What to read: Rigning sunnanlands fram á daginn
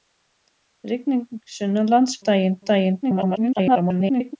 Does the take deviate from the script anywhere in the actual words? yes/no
yes